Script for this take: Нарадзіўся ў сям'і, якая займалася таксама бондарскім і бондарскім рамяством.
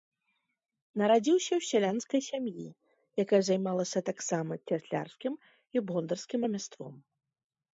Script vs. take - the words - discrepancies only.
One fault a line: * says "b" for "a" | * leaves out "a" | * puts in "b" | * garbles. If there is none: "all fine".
* puts in "сялянскай"
* says "цяслярскім" for "бондарскім"